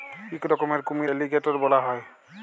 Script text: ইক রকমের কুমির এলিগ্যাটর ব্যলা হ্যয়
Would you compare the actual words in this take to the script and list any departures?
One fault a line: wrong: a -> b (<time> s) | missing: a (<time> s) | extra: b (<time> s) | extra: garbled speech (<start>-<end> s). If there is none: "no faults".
no faults